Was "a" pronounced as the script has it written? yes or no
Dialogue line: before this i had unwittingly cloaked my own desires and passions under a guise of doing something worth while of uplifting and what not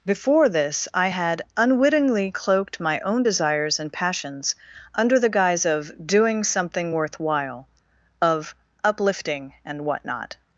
no